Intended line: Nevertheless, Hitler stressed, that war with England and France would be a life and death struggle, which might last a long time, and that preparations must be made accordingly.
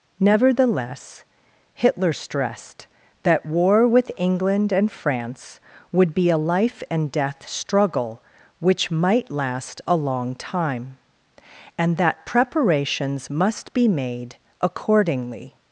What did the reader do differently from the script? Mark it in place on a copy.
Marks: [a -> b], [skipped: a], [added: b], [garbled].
Nevertheless, Hitler stressed, that war with England and France would be a life and death struggle, which might last a long time, and that preparations must be made accordingly.